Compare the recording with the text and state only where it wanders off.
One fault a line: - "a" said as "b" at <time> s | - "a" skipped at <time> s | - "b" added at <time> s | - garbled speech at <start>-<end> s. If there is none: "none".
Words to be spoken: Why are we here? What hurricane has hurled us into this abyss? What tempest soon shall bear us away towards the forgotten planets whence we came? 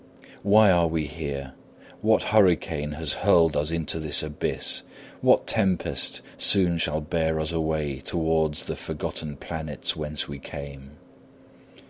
none